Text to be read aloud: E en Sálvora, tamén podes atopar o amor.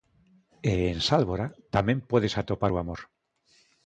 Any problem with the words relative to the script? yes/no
no